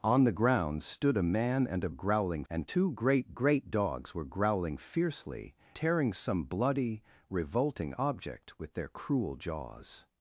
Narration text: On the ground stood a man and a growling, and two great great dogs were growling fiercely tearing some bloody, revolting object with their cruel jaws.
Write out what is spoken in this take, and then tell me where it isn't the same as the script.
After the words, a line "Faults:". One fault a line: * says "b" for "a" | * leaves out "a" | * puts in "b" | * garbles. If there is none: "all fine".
On the ground stood a man and a growling, and two great great dogs were growling fiercely tearing some bloody, revolting object with their cruel jaws.
Faults:
all fine